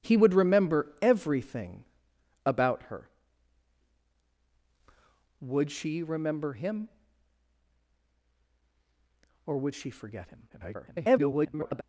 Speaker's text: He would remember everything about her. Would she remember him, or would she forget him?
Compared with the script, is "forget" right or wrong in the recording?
right